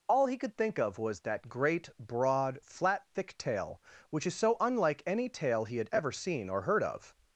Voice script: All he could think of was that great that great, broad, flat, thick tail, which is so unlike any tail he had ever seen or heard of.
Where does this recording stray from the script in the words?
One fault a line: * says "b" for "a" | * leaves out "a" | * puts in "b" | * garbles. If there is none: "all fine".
* leaves out "that great"